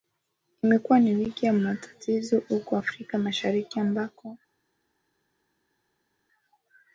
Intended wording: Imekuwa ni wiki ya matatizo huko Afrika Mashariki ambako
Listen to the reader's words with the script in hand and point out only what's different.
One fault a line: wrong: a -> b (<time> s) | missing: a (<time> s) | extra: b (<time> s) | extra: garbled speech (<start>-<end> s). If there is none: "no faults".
no faults